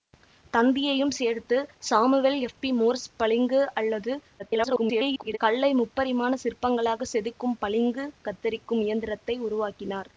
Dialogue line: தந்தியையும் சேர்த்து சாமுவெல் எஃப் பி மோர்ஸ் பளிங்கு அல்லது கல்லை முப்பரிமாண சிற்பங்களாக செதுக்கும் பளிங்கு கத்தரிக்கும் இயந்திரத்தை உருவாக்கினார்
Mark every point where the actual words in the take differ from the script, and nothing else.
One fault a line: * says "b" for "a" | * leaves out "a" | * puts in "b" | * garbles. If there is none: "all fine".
* garbles